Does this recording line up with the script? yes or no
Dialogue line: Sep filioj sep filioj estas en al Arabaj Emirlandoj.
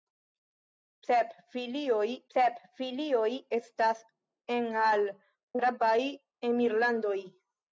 yes